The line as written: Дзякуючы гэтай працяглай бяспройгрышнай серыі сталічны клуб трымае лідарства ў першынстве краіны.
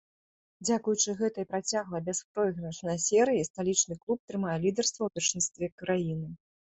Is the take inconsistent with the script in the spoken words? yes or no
no